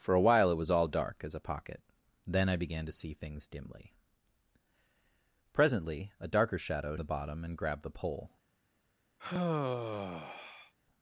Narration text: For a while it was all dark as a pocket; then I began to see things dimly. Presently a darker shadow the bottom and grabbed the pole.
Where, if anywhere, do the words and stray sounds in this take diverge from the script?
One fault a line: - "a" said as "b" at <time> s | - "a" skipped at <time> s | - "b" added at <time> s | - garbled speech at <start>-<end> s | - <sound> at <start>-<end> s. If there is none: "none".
- sigh at 9.2-10.7 s